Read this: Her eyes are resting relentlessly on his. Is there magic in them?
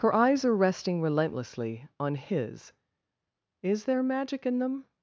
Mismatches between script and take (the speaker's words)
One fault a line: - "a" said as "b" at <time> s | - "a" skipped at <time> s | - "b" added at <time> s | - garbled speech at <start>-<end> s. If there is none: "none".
none